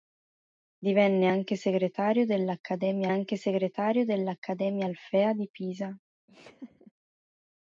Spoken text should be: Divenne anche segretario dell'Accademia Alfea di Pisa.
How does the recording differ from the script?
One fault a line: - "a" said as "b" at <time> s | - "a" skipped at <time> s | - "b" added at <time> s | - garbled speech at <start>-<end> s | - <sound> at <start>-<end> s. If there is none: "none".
- "anche segretario dell'Accademia" added at 3.1 s
- laugh at 6.3-6.9 s